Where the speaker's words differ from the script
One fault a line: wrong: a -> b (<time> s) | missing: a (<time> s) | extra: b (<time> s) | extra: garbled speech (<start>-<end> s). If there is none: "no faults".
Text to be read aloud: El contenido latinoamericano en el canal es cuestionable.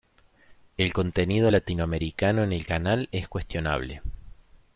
no faults